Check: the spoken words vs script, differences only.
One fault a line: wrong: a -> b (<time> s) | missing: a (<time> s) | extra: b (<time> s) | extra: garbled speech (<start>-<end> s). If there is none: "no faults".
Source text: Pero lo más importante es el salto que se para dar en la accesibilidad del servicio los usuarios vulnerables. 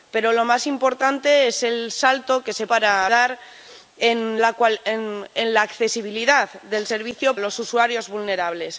no faults